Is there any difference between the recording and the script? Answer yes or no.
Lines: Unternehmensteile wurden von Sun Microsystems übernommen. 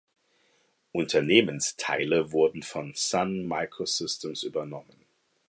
no